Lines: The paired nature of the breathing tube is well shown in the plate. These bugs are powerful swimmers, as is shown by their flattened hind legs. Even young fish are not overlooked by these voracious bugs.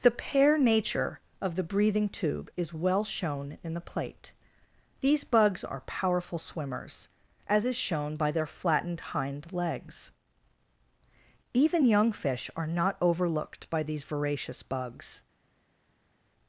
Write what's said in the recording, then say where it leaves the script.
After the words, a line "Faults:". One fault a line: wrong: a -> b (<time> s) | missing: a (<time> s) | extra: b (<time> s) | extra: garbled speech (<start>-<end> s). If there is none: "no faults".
The pair nature of the breathing tube is well shown in the plate. These bugs are powerful swimmers, as is shown by their flattened hind legs. Even young fish are not overlooked by these voracious bugs.
Faults:
wrong: paired -> pair (0.1 s)